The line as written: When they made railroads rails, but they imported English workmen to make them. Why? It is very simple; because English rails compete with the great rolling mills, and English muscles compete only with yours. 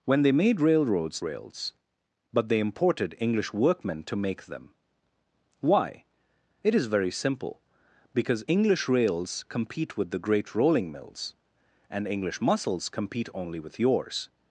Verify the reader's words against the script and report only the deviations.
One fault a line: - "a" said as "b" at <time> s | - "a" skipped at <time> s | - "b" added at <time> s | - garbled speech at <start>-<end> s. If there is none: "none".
none